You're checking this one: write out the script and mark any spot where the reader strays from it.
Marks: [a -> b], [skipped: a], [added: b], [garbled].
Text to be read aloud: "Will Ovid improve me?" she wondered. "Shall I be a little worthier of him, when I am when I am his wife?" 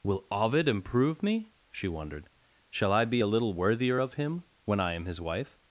"Will Ovid improve me?" she wondered. "Shall I be a little worthier of him, when I am [skipped: when I am] his wife?"